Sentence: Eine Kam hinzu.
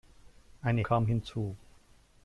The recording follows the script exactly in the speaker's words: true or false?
true